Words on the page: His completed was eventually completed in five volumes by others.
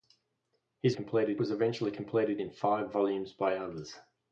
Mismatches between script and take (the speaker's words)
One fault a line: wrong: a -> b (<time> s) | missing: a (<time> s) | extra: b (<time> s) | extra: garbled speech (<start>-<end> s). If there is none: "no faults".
no faults